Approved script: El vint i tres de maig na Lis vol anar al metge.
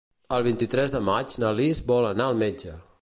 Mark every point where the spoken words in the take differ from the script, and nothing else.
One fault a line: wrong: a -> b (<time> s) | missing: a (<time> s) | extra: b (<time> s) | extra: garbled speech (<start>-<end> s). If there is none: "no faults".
no faults